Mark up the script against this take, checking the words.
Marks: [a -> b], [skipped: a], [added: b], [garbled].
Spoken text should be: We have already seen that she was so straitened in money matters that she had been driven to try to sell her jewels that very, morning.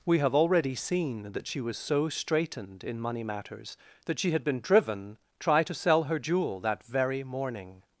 We have already seen that she was so straitened in money matters that she had been driven [skipped: to] try to sell her [jewels -> jewel] that very, morning.